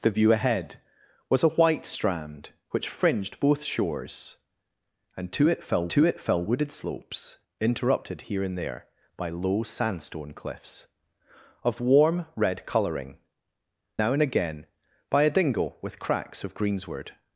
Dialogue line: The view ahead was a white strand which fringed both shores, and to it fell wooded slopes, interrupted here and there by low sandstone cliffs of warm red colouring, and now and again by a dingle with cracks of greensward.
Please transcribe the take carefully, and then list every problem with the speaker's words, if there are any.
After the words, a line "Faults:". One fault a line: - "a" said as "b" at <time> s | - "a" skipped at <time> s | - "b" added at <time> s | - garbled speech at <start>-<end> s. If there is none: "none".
The view ahead was a white strand which fringed both shores, and to it fell to it fell wooded slopes, interrupted here and there by low sandstone cliffs of warm red colouring, now and again by a dingle with cracks of greensward.
Faults:
- "to it fell" added at 5.9 s
- "and" skipped at 13.2 s